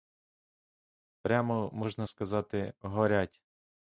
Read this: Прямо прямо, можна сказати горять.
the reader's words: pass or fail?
fail